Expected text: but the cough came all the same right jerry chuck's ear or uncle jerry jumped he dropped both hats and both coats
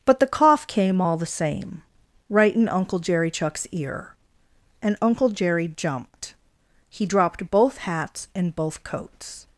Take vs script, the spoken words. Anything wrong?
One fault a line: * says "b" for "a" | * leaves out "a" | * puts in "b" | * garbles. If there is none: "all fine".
* puts in "in uncle"
* says "and" for "or"